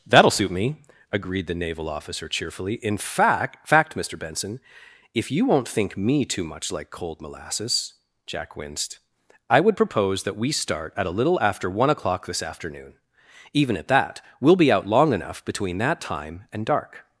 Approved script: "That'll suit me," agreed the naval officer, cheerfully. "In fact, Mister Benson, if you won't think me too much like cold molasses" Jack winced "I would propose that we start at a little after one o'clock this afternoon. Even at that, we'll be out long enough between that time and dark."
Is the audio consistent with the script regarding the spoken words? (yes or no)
no